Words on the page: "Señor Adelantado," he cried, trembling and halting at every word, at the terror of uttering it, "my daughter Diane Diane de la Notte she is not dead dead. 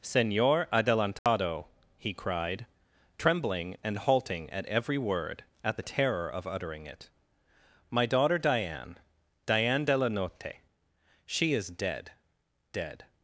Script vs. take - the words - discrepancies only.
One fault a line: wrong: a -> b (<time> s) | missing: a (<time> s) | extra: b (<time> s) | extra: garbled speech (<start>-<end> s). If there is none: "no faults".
missing: not (11.7 s)